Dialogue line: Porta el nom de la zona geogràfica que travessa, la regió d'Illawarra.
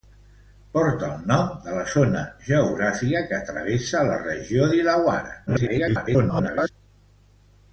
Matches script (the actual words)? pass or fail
fail